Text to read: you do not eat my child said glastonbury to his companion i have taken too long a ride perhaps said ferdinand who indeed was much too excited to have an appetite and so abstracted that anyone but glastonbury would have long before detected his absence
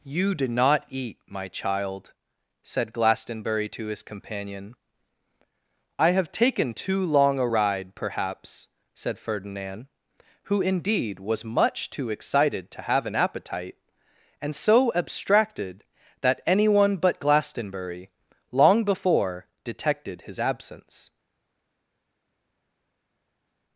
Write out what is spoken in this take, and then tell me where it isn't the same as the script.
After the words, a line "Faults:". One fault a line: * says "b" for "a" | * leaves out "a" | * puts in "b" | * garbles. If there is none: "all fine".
you do not eat my child said glastonbury to his companion i have taken too long a ride perhaps said ferdinand who indeed was much too excited to have an appetite and so abstracted that anyone but glastonbury long before detected his absence
Faults:
* leaves out "would have"